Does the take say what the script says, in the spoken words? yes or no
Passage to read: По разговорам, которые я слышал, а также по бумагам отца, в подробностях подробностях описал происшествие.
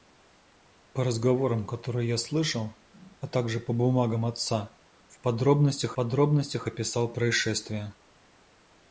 yes